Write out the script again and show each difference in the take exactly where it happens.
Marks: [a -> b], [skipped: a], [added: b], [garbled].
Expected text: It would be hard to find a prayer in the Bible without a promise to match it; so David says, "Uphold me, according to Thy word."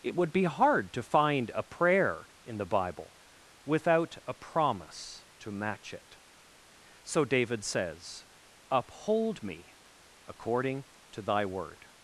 It would be hard to find a prayer in the Bible without a promise to match it; so David says, "Uphold me, according to Thy word."